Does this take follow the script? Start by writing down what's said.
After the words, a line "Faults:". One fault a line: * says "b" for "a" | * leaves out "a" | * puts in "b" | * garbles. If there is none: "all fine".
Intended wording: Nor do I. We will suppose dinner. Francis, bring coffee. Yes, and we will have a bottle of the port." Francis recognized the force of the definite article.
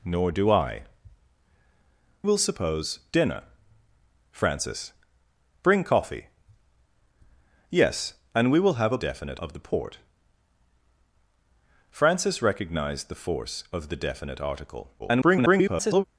Nor do I. Will suppose dinner. Francis, bring coffee. Yes, and we will have a definite of the port." Francis recognized the force of the definite article. [garbled]
Faults:
* leaves out "We"
* says "definite" for "bottle"
* garbles